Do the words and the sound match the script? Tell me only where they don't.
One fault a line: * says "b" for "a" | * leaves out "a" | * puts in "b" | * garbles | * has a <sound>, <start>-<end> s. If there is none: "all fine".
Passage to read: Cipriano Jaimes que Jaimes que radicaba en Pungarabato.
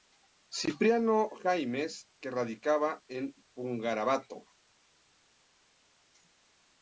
* leaves out "Jaimes que"